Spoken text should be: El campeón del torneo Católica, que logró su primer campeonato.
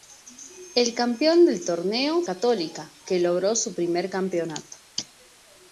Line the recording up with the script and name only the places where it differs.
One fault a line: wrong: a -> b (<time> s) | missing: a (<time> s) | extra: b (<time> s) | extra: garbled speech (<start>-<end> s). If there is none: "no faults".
no faults